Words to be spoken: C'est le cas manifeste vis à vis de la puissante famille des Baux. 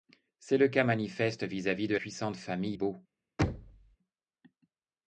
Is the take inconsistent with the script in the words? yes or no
yes